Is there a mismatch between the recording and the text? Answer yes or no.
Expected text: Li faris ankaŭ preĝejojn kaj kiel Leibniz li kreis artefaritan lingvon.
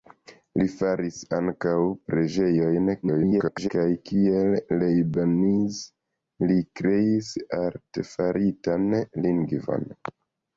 yes